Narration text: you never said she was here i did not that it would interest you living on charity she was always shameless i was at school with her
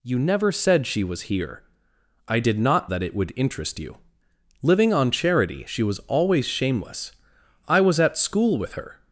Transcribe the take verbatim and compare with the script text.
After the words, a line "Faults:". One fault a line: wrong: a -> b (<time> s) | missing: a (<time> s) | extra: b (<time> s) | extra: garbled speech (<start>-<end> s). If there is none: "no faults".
you never said she was here i did not that it would interest you living on charity she was always shameless i was at school with her
Faults:
no faults